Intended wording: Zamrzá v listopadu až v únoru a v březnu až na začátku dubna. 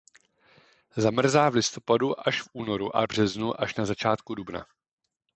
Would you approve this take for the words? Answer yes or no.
yes